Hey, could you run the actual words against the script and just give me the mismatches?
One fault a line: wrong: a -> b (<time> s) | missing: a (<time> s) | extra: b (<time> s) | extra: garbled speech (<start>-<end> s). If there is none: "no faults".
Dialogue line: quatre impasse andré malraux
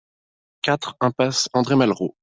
no faults